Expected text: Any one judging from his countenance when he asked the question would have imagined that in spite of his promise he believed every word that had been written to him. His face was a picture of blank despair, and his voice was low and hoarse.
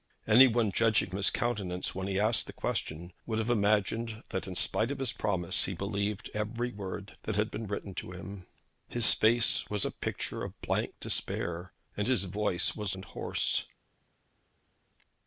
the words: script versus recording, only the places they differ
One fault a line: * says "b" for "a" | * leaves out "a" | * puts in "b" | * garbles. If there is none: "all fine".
* leaves out "from"
* leaves out "low"